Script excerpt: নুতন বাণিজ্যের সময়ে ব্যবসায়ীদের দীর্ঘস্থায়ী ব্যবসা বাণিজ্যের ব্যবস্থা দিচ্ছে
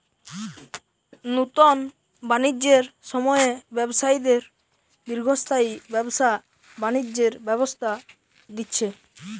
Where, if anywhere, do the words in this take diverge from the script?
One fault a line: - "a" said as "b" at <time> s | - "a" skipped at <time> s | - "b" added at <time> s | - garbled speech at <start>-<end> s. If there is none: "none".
none